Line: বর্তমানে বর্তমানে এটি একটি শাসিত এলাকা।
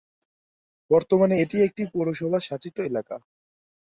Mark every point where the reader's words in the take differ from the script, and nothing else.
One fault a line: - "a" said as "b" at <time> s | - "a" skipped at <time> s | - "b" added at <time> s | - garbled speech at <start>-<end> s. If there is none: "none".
- "বর্তমানে" skipped at 1.4 s
- "পৌরসভা" added at 1.9 s